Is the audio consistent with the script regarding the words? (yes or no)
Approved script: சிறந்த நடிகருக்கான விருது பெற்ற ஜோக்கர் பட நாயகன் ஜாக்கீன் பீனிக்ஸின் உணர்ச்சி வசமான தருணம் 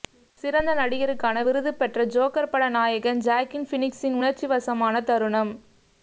yes